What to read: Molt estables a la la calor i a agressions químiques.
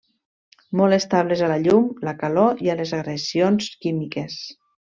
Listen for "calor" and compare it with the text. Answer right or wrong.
right